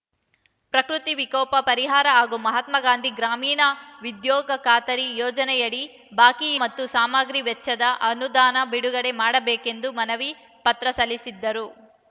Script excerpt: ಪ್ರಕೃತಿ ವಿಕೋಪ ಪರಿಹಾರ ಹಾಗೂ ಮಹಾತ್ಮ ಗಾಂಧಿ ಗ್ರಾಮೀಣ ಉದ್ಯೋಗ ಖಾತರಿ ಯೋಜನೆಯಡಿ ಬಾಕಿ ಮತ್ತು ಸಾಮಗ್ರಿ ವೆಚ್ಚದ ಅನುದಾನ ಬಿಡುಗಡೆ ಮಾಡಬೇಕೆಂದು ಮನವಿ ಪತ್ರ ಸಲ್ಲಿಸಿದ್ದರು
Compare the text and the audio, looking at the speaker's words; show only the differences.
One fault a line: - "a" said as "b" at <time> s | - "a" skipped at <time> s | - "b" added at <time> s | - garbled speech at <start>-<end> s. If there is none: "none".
none